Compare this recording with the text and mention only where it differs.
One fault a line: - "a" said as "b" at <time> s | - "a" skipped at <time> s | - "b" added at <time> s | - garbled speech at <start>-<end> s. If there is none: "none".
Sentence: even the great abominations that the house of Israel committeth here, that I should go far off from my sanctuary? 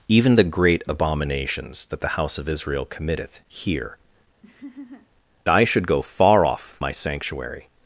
- "that" skipped at 4.0 s
- "from" skipped at 6.7 s